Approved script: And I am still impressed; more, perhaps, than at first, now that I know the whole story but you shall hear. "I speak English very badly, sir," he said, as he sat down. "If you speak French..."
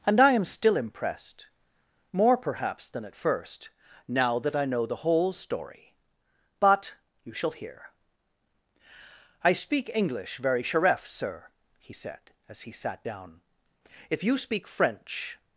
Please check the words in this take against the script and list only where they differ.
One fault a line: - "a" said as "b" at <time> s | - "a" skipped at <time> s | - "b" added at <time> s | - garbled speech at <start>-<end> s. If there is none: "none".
- "badly" said as "sheref" at 10.6 s